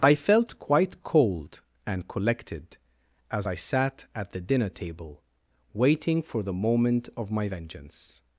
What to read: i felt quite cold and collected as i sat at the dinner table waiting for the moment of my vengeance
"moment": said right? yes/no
yes